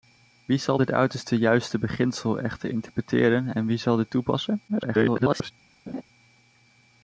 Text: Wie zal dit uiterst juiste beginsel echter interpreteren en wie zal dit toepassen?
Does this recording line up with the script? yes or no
no